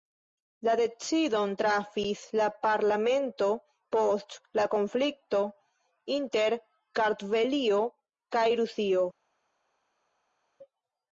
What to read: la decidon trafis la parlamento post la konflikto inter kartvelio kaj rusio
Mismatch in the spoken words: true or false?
false